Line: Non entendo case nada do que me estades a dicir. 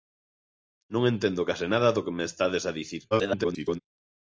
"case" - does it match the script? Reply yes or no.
yes